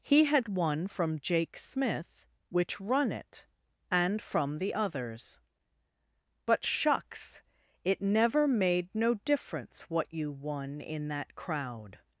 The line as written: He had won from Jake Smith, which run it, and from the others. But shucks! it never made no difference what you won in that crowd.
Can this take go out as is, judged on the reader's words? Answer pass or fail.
pass